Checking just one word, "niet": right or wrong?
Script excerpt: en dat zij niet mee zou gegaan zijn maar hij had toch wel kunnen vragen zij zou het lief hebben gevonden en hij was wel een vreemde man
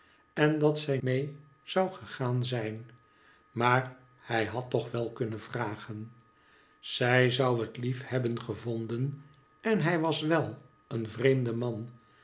wrong